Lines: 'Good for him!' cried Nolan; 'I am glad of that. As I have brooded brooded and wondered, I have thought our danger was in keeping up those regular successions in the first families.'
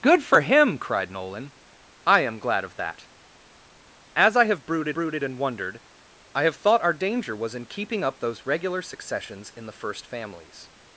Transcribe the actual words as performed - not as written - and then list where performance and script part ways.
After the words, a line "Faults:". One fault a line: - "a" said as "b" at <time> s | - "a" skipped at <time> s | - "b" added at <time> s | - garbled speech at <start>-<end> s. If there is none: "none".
'Good for him!' cried Nolan; 'I am glad of that. As I have brooded brooded and wondered, I have thought our danger was in keeping up those regular successions in the first families.'
Faults:
none